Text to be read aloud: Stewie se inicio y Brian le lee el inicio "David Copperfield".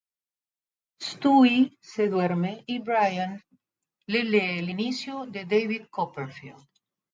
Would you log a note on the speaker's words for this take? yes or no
yes